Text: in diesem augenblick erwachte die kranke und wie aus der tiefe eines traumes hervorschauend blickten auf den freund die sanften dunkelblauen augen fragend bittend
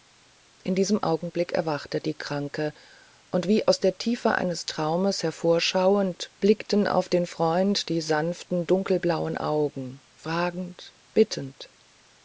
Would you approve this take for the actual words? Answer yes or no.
yes